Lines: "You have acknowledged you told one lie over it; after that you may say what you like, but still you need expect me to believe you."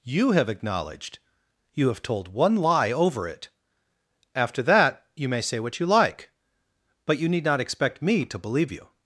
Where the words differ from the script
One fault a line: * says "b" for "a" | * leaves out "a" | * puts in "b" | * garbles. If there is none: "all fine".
* puts in "have"
* leaves out "still"
* puts in "not"